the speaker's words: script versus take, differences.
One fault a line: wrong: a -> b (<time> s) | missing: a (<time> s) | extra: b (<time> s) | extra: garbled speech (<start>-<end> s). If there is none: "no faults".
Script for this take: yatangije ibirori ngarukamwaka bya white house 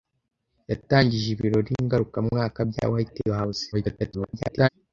extra: garbled speech (3.7-4.7 s)